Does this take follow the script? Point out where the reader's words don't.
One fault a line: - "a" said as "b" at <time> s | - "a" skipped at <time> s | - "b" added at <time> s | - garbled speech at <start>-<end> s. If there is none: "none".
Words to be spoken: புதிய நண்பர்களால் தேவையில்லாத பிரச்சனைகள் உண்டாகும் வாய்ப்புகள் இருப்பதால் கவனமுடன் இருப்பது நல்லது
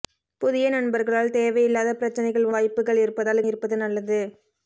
- "உண்டாகும்" skipped at 2.5 s
- "கவனமுடன்" skipped at 3.5 s